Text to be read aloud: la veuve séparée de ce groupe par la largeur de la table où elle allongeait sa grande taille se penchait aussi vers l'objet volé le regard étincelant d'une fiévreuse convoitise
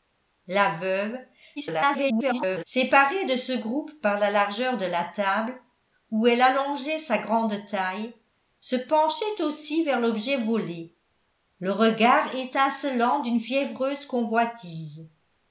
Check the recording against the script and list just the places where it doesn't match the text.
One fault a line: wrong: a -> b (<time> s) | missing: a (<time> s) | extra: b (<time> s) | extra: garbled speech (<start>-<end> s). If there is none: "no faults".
extra: garbled speech (1.6-2.6 s)